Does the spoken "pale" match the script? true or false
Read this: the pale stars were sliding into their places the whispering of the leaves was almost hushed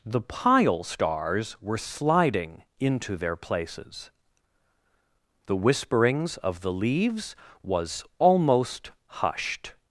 false